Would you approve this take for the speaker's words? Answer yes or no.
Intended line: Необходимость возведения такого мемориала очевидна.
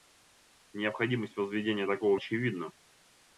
no